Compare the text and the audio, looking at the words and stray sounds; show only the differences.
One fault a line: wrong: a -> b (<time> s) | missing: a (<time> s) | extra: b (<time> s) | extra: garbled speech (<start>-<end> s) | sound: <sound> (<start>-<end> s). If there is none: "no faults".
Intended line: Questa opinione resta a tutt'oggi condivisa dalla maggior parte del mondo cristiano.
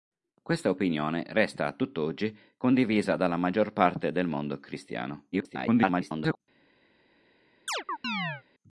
extra: garbled speech (5.3-6.4 s)
sound: chirp (7.7-8.4 s)